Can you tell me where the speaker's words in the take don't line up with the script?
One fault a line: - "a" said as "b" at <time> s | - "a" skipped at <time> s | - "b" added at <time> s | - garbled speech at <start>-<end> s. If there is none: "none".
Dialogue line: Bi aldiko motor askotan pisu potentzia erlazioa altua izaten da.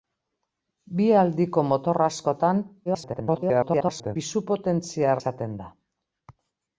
- garbled speech at 2.9-4.2 s
- "erlazioa altua" skipped at 5.1 s